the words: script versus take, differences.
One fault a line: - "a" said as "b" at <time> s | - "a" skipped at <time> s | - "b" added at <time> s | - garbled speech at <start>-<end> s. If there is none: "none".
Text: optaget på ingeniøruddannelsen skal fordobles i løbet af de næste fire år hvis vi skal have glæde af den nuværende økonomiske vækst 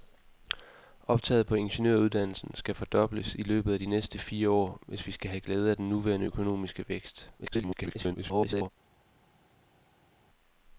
- garbled speech at 7.4-8.7 s